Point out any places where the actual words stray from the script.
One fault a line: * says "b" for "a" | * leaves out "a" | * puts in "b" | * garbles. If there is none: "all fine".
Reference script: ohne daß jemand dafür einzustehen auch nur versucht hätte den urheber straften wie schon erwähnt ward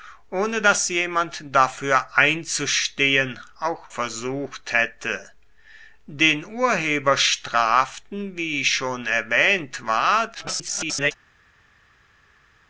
* leaves out "nur"
* garbles